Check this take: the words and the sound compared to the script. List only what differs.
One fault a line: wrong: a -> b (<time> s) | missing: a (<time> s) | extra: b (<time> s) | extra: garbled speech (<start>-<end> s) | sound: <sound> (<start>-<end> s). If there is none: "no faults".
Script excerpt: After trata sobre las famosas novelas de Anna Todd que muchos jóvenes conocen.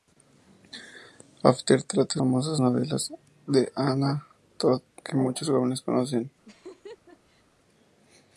missing: sobre las (2.2 s)
sound: laugh (6.4-7.4 s)